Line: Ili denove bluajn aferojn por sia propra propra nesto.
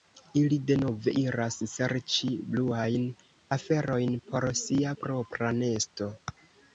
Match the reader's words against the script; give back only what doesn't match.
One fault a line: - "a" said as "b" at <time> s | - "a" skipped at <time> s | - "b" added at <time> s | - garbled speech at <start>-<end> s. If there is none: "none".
- "iras serĉi" added at 1.2 s
- "propra" skipped at 5.5 s